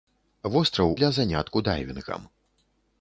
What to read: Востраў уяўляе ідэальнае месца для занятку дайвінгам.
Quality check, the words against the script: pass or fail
fail